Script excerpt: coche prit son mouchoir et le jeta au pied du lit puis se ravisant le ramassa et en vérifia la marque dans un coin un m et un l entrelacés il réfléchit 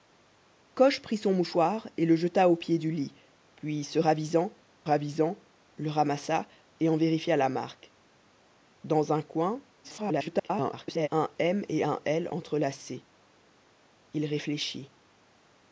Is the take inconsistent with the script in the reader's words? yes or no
yes